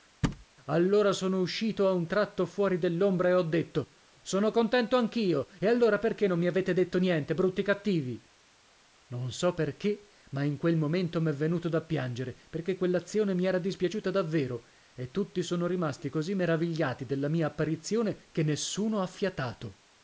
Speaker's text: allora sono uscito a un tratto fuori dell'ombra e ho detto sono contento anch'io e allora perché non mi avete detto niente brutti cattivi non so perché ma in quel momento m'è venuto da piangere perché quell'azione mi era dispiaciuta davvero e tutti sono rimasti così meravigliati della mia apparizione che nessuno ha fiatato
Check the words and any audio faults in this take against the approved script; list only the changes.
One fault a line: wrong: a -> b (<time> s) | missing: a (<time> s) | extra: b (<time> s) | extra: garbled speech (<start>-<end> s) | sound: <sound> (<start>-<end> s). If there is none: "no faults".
sound: thud (0.2-0.5 s)